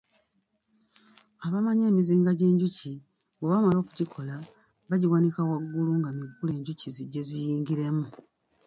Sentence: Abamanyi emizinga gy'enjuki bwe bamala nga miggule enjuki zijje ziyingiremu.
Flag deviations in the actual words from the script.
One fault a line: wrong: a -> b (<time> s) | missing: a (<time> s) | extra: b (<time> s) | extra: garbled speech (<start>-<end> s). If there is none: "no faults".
extra: okugikola bagiwanika waggulu (3.8 s)